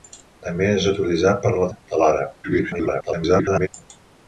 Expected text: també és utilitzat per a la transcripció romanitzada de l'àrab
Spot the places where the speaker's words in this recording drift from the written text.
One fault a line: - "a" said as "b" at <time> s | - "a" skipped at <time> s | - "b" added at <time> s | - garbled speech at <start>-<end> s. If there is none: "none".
- "transcripció romanitzada" skipped at 1.7 s
- garbled speech at 2.4-3.7 s